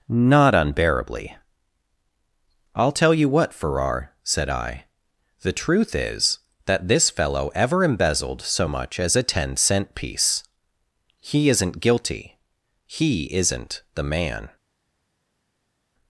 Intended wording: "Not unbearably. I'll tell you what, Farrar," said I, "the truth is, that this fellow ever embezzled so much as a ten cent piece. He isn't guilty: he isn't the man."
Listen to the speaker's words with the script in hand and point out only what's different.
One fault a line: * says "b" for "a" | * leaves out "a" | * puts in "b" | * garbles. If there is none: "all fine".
all fine